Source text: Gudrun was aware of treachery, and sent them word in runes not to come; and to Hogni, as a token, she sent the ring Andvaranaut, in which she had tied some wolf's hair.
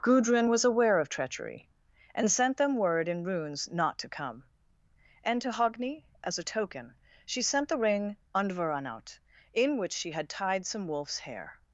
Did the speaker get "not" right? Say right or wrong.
right